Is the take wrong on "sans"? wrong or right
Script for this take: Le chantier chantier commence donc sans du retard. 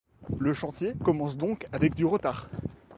wrong